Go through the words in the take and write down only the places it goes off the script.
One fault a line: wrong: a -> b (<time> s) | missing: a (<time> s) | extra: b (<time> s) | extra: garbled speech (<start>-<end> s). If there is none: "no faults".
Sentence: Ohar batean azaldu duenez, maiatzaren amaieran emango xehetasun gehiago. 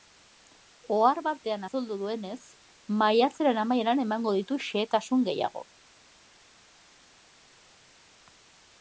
extra: ditu (4.4 s)